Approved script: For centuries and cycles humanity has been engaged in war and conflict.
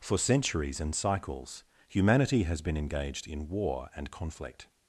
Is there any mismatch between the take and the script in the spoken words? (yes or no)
no